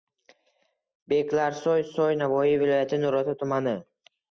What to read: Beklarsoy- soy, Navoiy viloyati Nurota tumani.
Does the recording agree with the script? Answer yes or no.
yes